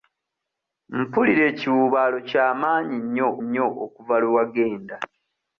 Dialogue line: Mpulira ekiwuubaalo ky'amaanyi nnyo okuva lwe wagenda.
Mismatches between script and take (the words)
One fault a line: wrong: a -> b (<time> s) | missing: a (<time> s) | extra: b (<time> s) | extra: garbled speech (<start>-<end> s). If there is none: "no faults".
extra: nnyo (3.4 s)